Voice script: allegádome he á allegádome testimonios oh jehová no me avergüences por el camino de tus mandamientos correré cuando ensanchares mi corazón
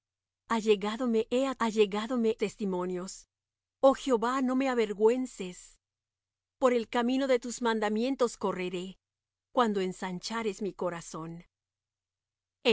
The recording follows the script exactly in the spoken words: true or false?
true